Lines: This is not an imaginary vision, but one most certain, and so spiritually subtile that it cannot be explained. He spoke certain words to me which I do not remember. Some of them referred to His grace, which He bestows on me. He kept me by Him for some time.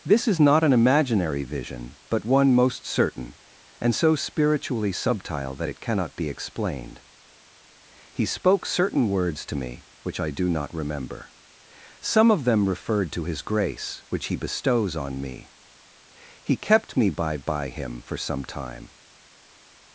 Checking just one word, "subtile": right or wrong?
right